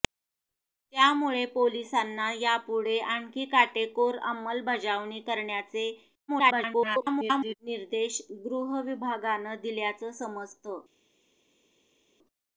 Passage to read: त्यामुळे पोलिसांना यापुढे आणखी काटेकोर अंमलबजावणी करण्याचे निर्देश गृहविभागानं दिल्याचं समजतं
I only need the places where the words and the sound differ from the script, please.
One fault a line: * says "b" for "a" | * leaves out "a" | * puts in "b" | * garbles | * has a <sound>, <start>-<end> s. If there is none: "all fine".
* garbles